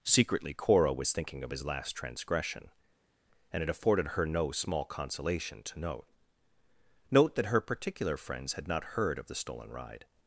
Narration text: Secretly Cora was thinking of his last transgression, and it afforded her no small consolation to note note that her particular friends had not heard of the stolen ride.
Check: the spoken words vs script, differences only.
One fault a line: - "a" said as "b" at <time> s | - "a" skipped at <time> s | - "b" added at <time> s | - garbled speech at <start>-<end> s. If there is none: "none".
none